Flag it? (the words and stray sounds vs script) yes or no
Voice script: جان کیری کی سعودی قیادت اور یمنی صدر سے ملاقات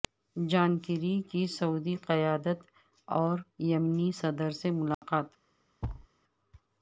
yes